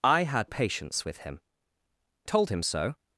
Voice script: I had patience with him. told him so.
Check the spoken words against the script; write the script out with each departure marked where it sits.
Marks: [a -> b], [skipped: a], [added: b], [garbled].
I had patience with him. told him so.